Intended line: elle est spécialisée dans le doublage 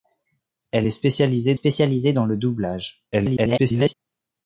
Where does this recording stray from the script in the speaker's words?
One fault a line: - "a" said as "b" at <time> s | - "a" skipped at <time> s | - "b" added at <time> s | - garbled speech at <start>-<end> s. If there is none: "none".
- "spécialisée" added at 1.5 s
- garbled speech at 3.1-3.9 s